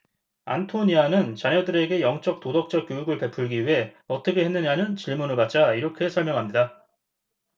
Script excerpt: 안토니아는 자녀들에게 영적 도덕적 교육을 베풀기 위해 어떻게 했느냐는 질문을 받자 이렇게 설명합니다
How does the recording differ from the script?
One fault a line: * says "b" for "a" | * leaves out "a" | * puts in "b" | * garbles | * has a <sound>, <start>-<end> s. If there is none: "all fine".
all fine